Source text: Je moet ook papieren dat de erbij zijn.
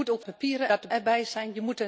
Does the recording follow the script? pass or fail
pass